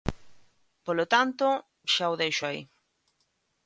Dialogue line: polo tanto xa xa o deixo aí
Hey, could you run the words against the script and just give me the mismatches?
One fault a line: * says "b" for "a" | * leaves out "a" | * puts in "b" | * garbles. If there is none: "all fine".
* leaves out "xa"